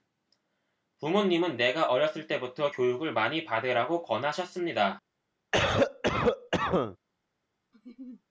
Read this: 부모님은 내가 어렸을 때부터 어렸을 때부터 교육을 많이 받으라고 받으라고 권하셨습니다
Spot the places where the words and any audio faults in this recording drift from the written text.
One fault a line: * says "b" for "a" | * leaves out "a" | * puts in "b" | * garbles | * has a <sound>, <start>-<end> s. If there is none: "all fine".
* leaves out "어렸을 때부터"
* leaves out "받으라고"
* has a cough, 5.5-7.0 s
* has a laugh, 7.7-8.2 s